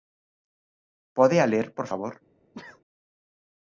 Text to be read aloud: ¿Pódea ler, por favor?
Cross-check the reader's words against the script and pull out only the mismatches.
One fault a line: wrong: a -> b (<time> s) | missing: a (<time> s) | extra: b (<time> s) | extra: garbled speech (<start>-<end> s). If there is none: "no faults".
no faults